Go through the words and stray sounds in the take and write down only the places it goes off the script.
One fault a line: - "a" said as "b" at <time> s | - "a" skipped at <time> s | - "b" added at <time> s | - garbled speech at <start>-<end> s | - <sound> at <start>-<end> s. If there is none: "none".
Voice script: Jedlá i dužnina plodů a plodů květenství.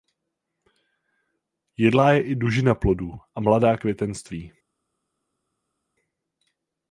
- "je" added at 2.1 s
- "plodů" said as "mladá" at 3.4 s